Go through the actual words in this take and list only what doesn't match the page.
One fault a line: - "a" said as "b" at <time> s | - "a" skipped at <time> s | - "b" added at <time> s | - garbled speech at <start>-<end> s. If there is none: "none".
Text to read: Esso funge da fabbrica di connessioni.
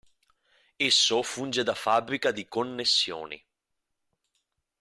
none